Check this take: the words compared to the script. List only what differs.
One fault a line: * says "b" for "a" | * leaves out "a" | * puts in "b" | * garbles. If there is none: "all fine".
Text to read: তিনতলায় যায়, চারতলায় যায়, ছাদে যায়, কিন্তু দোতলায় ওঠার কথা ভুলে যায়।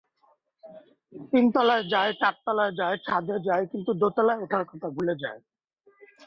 all fine